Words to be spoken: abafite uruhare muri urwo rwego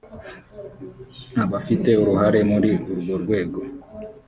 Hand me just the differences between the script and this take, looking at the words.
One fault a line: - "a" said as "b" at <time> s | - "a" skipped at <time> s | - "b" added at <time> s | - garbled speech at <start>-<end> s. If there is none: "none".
none